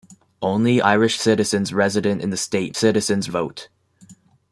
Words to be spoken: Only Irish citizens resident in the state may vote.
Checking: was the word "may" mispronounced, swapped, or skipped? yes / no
yes